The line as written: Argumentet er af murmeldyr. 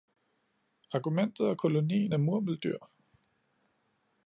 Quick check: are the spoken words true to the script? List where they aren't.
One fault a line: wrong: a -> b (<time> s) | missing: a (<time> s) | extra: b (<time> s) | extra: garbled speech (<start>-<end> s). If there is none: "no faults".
extra: kolonien (1.5 s)